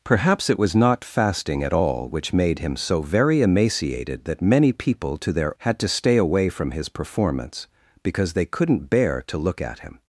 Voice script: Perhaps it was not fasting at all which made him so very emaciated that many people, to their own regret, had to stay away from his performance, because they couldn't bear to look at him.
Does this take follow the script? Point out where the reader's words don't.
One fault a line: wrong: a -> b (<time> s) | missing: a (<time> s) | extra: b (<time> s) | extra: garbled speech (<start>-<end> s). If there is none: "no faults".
missing: own regret (5.6 s)